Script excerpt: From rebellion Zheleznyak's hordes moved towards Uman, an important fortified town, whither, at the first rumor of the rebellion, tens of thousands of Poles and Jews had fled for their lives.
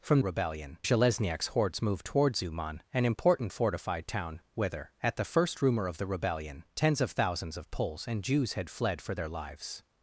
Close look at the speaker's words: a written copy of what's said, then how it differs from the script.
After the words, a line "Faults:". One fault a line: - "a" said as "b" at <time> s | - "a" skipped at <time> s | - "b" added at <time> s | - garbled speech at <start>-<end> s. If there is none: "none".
From rebellion Zheleznyak's hordes moved towards Uman, an important fortified town, whither, at the first rumor of the rebellion, tens of thousands of Poles and Jews had fled for their lives.
Faults:
none